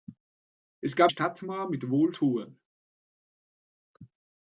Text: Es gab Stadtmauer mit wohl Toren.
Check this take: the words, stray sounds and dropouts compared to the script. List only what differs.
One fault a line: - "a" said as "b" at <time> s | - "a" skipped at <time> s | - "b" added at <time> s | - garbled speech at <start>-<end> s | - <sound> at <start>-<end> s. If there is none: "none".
none